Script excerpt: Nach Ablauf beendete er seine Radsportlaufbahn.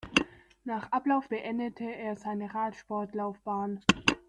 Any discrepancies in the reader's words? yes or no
no